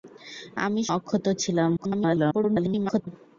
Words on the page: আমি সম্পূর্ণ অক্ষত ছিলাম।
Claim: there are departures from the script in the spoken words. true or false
true